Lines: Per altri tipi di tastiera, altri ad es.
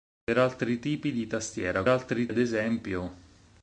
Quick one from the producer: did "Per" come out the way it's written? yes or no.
yes